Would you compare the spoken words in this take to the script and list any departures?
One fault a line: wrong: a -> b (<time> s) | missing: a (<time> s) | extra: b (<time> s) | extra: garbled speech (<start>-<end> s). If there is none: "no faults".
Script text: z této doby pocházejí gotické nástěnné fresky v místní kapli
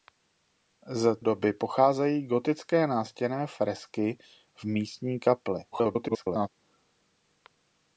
missing: této (1.1 s)
extra: garbled speech (5.7-6.5 s)